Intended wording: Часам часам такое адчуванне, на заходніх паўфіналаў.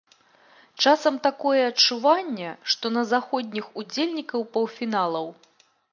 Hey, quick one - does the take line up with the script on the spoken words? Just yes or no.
no